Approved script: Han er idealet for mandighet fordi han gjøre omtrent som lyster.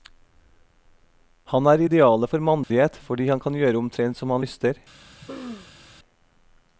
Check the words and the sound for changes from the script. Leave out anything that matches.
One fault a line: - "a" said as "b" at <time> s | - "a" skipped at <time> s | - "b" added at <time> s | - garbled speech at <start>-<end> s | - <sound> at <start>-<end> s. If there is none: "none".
- dropout at 2.6-2.7 s
- "kan" added at 3.4 s
- "han" added at 4.3 s
- throat clearing at 5.0-5.9 s